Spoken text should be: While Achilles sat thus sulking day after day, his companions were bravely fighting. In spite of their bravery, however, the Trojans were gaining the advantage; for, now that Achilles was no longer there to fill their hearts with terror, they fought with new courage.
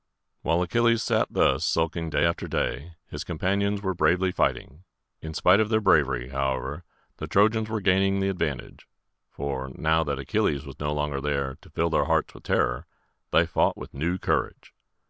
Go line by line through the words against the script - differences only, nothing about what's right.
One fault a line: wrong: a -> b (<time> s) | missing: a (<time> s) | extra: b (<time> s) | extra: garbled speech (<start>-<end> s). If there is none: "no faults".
no faults